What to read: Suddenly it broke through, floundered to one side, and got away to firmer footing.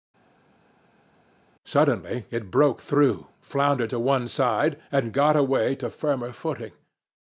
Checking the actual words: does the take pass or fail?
pass